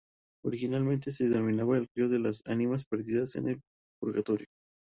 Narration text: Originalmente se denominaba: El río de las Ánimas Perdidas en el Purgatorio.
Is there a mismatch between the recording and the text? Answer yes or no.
no